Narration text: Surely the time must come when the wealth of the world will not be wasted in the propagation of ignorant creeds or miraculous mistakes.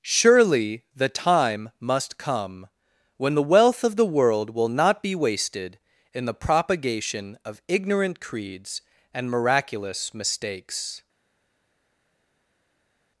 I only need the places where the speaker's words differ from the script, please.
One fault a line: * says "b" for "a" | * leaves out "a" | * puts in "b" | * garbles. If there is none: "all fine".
* says "and" for "or"